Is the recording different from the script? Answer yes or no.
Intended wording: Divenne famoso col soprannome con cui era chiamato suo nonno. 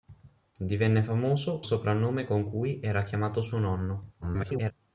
yes